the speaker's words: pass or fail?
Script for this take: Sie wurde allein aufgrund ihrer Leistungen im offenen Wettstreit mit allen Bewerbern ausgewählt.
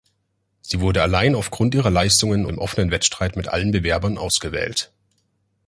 pass